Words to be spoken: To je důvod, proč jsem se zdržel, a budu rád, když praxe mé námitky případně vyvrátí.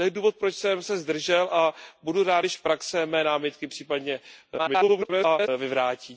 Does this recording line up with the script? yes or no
no